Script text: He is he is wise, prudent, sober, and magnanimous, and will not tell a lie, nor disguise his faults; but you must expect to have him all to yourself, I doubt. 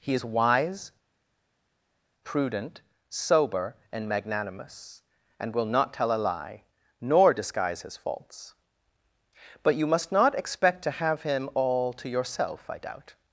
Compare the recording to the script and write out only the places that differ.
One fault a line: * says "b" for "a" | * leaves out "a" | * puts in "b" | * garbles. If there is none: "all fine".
* leaves out "he is"
* puts in "not"